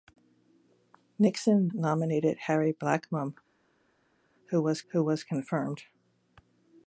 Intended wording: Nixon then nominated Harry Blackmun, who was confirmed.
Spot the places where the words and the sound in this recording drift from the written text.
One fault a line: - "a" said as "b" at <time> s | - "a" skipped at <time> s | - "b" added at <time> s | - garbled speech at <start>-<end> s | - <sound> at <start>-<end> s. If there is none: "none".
- "then" skipped at 1.7 s
- "who was" added at 4.9 s